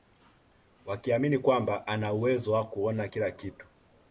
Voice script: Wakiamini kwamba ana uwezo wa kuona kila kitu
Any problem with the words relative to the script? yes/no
no